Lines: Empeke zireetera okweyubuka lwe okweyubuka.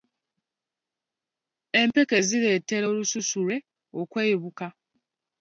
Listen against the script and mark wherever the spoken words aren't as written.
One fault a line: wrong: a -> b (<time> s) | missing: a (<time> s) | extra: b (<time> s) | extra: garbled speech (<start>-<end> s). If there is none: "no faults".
wrong: okweyubuka -> olususu (2.9 s)